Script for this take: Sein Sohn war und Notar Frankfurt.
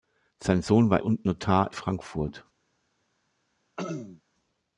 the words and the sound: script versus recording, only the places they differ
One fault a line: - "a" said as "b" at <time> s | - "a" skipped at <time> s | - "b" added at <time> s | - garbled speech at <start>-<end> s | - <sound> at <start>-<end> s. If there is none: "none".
- throat clearing at 3.8-4.2 s